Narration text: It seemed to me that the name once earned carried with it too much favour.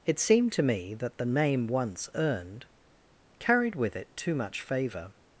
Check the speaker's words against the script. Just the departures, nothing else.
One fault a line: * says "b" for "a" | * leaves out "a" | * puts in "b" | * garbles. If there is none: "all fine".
all fine